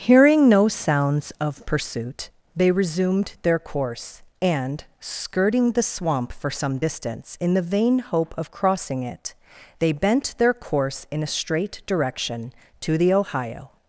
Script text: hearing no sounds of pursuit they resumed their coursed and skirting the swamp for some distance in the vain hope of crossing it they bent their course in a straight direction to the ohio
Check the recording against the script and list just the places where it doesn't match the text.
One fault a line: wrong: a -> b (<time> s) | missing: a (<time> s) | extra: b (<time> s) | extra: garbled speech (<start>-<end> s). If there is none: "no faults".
wrong: coursed -> course (3.6 s)